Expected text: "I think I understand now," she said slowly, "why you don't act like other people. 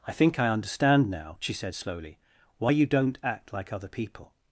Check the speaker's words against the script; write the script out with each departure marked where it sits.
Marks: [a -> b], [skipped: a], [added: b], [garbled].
"I think I understand now," she said slowly, "why you don't act like other people.